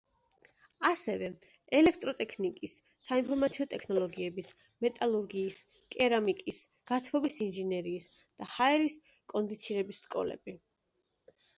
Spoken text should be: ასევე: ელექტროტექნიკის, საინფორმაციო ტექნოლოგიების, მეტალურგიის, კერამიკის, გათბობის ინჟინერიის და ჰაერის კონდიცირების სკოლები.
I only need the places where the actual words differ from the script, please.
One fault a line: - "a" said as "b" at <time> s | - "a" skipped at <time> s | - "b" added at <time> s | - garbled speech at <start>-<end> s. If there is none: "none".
none